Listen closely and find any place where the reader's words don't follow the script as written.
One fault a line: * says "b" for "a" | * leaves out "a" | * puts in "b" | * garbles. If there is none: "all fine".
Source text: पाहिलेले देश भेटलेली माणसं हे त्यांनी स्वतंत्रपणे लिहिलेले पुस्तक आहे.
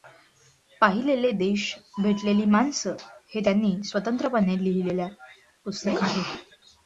all fine